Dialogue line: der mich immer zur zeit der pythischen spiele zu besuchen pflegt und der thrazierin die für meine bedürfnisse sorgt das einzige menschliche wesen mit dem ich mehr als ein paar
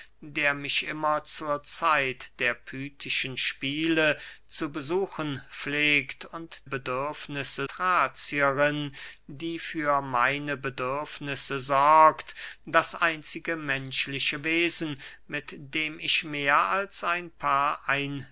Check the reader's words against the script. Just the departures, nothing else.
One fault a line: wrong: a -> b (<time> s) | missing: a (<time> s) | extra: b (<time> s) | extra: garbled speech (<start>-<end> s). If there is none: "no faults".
wrong: der -> bedürfnisse (6.7 s)